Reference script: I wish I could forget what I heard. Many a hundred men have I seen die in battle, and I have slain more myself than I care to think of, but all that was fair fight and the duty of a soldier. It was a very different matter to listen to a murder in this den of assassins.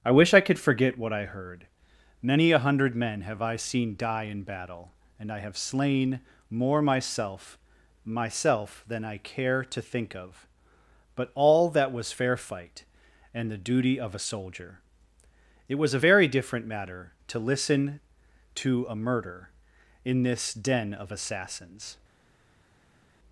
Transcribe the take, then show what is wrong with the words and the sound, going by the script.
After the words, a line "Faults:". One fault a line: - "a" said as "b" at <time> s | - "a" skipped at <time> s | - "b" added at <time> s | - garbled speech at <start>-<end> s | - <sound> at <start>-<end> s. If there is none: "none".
I wish I could forget what I heard. Many a hundred men have I seen die in battle, and I have slain more myself myself than I care to think of, but all that was fair fight and the duty of a soldier. It was a very different matter to listen to a murder in this den of assassins.
Faults:
- "myself" added at 8.0 s